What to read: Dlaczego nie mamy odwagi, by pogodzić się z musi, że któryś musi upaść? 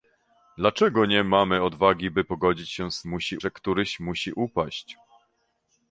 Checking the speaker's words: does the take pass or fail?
pass